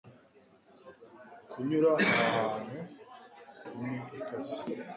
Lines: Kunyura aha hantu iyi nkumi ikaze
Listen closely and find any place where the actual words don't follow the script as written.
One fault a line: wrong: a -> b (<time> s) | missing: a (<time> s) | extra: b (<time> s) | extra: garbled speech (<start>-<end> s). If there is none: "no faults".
missing: iyi (2.8 s)